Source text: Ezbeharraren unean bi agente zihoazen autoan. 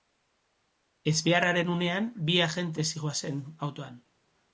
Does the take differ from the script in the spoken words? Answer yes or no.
no